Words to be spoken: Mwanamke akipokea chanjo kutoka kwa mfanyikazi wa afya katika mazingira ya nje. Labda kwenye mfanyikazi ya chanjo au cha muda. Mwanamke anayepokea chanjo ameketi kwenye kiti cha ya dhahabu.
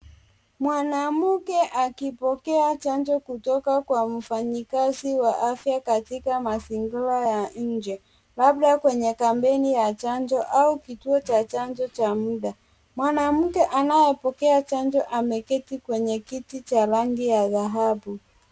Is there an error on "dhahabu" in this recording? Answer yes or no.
no